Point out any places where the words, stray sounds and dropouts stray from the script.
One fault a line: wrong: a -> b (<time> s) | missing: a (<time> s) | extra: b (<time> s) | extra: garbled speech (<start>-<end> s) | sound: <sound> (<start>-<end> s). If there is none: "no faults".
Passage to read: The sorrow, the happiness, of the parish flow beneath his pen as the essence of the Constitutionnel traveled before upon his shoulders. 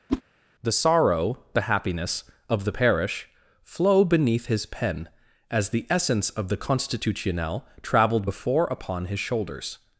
sound: whoosh (0.1-0.2 s)